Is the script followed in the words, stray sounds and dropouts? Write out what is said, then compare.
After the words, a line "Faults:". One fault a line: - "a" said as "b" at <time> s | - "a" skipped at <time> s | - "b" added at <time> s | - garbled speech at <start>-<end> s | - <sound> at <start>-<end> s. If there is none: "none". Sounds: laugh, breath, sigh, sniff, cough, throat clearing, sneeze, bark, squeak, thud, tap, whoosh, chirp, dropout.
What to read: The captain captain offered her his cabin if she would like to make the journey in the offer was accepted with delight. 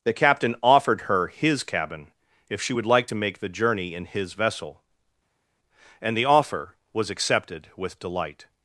The captain offered her his cabin if she would like to make the journey in his vessel, and the offer was accepted with delight.
Faults:
- "captain" skipped at 0.6 s
- "his vessel and" added at 4.1 s